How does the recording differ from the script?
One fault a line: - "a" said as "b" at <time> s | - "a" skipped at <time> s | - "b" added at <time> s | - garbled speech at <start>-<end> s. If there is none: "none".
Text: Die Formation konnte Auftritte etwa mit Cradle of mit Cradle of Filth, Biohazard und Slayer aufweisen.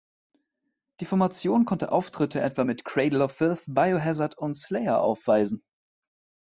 - "mit Cradle of" skipped at 3.3 s